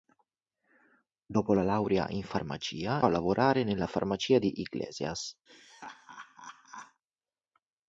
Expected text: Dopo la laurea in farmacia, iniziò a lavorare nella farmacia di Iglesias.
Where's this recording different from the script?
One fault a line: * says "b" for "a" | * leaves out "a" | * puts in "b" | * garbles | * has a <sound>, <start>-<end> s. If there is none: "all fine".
* leaves out "iniziò"
* has a laugh, 5.5-7.0 s